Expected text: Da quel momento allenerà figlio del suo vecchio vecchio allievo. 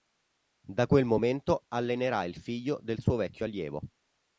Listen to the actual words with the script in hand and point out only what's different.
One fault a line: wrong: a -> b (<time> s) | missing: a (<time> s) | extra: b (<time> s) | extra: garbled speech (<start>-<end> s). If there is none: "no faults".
extra: il (2.2 s)
missing: vecchio (3.5 s)